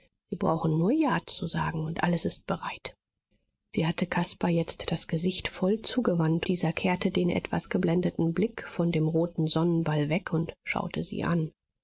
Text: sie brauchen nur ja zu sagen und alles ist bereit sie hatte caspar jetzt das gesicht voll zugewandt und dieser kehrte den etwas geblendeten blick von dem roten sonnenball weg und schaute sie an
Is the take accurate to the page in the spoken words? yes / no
no